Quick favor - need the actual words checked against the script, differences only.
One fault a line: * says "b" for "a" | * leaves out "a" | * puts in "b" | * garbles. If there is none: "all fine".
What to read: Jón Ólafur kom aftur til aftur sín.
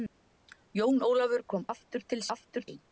all fine